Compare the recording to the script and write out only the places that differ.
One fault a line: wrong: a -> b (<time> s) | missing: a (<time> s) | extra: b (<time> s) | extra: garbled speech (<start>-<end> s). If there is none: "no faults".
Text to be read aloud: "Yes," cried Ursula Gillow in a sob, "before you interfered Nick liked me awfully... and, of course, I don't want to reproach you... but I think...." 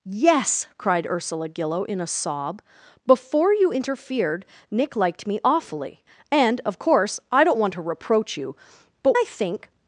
no faults